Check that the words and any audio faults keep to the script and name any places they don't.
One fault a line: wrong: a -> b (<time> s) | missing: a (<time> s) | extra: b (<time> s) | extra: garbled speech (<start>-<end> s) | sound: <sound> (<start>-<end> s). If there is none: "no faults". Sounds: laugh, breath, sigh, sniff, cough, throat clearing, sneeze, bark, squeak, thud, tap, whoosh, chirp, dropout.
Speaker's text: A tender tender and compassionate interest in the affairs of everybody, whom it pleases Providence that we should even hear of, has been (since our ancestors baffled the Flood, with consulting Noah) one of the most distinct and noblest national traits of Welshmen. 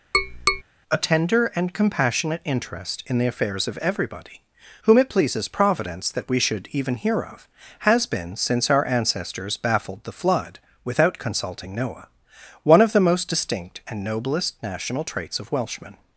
sound: tap (0.1-0.6 s)
missing: tender (1.5 s)
wrong: with -> without (10.8 s)